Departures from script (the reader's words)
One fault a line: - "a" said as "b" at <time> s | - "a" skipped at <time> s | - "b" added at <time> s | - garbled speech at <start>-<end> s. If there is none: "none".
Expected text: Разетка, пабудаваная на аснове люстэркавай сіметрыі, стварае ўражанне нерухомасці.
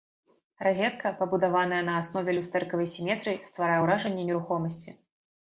none